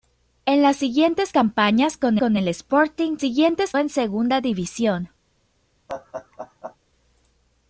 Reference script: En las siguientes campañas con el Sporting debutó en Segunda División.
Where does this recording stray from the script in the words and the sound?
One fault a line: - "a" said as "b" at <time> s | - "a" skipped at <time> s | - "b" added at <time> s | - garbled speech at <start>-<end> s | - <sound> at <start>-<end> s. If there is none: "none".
- "con" added at 2.2 s
- "debutó" said as "siguientes" at 3.2 s
- laugh at 5.9-6.8 s